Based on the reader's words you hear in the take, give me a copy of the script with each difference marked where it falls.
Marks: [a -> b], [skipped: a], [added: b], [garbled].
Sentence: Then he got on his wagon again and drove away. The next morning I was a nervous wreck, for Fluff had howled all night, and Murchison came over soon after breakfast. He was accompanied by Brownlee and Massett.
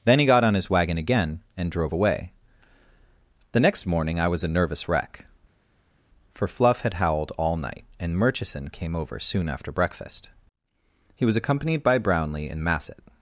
Then he got on his wagon again and drove away. The next morning I was a nervous wreck, for Fluff had howled all night, and Murchison came over soon after breakfast. He was accompanied by Brownlee and Massett.